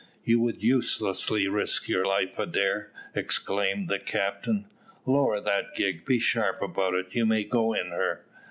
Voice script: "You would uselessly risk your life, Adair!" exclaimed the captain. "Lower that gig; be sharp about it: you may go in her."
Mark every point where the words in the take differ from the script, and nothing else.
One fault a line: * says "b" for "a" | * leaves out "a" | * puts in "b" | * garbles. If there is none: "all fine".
all fine